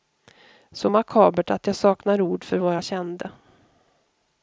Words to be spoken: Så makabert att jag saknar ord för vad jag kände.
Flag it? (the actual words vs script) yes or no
no